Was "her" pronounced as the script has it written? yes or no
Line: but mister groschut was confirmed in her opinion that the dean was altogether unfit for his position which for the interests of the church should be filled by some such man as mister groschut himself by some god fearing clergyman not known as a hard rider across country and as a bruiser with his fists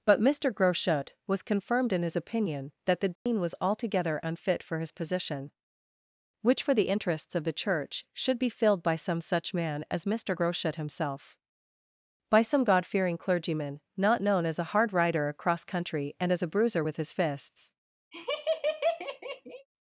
no